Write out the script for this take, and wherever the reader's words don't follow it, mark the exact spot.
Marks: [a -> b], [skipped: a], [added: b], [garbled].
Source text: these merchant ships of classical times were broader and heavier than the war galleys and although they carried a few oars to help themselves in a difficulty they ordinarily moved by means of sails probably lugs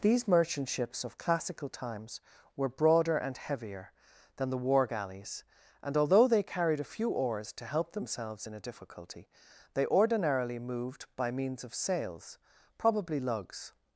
these merchant ships of classical times were broader and heavier than the war galleys and although they carried a few oars to help themselves in a difficulty they ordinarily moved by means of sails probably lugs